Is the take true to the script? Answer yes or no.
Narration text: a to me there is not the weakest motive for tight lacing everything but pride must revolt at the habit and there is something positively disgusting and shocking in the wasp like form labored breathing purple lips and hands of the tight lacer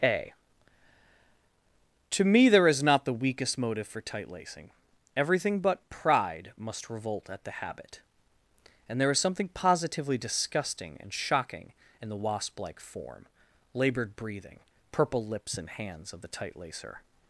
yes